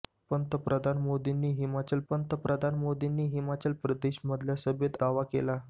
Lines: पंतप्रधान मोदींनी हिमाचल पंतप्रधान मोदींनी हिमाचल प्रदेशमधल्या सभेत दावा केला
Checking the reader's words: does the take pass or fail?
pass